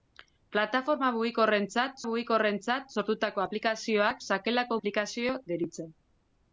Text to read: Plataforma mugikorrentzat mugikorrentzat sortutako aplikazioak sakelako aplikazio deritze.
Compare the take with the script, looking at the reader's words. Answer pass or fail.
pass